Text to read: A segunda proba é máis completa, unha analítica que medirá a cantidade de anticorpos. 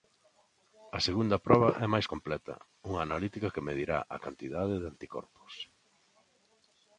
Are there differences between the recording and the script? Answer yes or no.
no